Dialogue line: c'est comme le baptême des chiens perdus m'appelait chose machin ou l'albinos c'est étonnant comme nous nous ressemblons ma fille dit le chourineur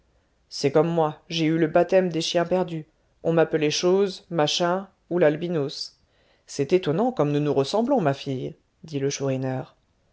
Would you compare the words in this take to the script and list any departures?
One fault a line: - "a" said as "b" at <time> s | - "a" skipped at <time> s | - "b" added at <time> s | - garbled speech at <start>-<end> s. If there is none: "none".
- "moi j'ai eu" added at 0.9 s
- "on" added at 3.2 s